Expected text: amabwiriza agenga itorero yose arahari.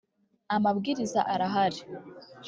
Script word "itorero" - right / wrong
wrong